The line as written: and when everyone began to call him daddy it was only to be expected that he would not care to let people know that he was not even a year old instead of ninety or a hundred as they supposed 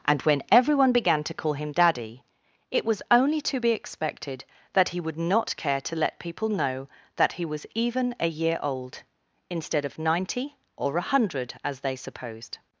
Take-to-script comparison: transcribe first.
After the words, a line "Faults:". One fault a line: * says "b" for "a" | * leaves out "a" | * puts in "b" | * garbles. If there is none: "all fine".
and when everyone began to call him daddy it was only to be expected that he would not care to let people know that he was even a year old instead of ninety or a hundred as they supposed
Faults:
* leaves out "not"